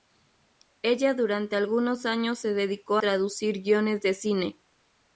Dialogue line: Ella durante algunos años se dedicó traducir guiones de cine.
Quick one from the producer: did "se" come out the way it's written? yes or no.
yes